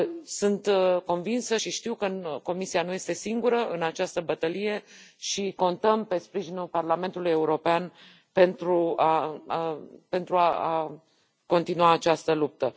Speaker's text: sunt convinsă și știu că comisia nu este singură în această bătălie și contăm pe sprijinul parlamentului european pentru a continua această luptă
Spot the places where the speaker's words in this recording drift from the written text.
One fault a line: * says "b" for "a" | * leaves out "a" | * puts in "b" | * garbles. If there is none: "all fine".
all fine